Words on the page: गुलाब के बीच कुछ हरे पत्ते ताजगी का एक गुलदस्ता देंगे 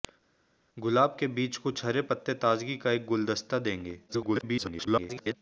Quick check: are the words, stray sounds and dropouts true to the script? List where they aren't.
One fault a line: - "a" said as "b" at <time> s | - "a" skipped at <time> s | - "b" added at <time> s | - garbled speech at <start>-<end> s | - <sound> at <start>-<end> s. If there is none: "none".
- garbled speech at 4.1-5.3 s